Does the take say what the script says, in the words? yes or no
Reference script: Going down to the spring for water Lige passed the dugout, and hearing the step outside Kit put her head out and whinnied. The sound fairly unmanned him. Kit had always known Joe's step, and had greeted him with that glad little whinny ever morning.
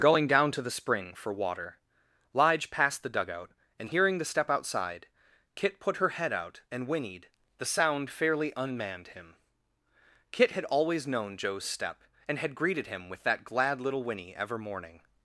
yes